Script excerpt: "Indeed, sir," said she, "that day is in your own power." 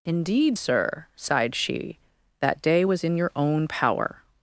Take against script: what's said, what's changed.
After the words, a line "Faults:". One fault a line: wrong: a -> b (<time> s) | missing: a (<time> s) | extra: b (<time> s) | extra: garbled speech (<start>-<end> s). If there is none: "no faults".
"Indeed, sir," sighed she, "that day was in your own power."
Faults:
wrong: said -> sighed (1.2 s)
wrong: is -> was (2.8 s)